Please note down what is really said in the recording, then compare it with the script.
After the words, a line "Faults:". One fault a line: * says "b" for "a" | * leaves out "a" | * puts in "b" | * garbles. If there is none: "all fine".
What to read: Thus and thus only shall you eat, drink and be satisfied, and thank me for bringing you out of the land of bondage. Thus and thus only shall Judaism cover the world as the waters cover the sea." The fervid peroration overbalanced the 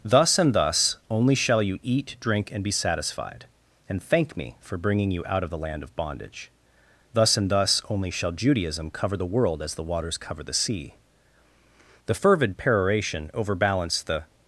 Thus and thus only shall you eat, drink and be satisfied, and thank me for bringing you out of the land of bondage. Thus and thus only shall Judaism cover the world as the waters cover the sea." The fervid peroration overbalanced the
Faults:
all fine